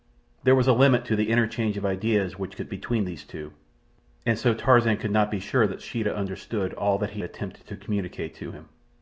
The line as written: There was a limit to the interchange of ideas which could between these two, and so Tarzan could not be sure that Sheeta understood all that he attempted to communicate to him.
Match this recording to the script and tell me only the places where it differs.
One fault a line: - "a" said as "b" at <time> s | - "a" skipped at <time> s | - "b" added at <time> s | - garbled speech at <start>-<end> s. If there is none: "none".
none